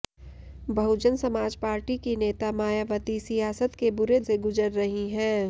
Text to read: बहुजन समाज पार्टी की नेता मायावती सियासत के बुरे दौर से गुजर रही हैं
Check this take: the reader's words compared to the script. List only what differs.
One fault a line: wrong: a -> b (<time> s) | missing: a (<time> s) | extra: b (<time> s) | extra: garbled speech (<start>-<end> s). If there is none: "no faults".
missing: दौर (4.2 s)